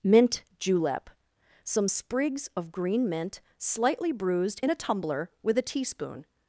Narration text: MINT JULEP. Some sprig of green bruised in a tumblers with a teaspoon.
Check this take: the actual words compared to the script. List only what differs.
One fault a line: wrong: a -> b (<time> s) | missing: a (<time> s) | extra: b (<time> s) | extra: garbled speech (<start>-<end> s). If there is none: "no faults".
wrong: sprig -> sprigs (1.9 s)
extra: mint slightly (3.1 s)
wrong: tumblers -> tumbler (4.7 s)